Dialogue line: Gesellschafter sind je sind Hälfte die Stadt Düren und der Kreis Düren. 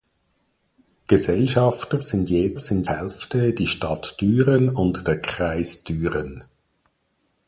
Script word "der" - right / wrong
right